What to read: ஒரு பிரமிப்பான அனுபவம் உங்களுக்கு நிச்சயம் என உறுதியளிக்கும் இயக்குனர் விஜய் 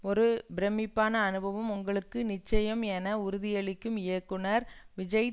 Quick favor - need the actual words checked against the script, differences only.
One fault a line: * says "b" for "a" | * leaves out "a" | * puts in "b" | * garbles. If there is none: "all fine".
all fine